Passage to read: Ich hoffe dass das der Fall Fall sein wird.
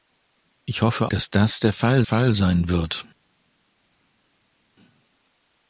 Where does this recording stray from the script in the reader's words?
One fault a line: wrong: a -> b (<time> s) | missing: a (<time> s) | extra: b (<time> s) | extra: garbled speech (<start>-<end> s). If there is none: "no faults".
no faults